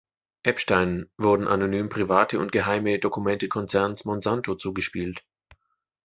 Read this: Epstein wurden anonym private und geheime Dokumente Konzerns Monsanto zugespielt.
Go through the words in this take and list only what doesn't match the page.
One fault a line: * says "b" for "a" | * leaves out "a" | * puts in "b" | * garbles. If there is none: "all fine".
all fine